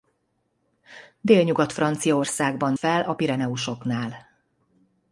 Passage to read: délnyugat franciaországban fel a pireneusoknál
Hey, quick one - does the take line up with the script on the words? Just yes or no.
yes